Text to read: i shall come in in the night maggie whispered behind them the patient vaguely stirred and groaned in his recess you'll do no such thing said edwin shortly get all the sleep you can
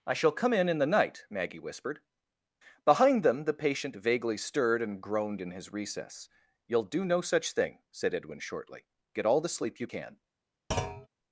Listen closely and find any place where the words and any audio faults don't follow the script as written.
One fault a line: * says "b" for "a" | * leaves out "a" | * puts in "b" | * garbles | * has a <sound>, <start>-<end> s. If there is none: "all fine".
* has a thud, 10.7-11.1 s